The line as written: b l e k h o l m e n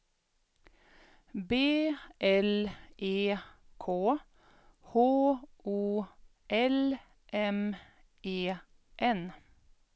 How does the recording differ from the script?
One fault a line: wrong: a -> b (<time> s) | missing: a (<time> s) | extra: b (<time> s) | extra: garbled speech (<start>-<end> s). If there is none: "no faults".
no faults